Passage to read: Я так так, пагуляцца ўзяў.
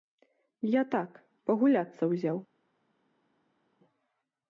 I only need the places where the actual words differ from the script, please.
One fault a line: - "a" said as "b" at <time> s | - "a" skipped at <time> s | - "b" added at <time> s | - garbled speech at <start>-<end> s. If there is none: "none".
- "так" skipped at 1.2 s